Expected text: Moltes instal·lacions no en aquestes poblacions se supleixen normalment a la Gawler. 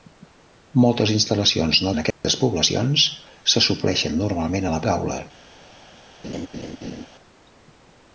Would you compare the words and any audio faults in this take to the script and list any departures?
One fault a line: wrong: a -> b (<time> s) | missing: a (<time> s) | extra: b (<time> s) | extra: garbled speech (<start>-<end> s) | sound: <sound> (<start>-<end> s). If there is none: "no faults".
sound: dropout (2.1-2.2 s)
sound: laugh (6.2-7.1 s)